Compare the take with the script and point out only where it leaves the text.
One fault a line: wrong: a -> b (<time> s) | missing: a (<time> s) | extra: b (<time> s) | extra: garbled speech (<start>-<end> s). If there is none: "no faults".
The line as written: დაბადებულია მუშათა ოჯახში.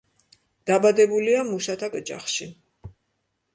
no faults